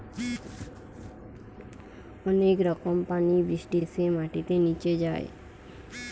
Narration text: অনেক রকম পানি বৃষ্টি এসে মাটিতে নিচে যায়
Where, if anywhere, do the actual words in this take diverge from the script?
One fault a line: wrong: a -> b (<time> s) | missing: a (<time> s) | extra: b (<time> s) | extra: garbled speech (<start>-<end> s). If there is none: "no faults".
no faults